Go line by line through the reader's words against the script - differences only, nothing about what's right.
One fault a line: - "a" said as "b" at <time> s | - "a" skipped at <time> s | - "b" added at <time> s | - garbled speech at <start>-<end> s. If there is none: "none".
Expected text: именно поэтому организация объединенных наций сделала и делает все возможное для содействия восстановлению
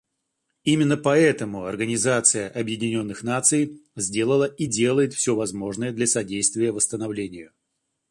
none